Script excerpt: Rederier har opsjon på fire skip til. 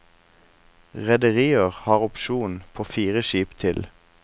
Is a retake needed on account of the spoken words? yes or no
no